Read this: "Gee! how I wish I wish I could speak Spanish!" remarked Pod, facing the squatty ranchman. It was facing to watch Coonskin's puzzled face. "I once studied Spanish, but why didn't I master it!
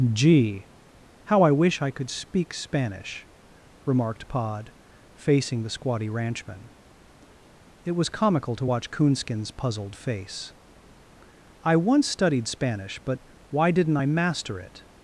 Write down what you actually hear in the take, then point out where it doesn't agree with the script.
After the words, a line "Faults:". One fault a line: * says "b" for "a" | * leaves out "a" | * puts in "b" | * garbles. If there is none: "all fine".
"Gee! how I wish I could speak Spanish!" remarked Pod, facing the squatty ranchman. It was comical to watch Coonskin's puzzled face. "I once studied Spanish, but why didn't I master it!
Faults:
* leaves out "wish I"
* says "comical" for "facing"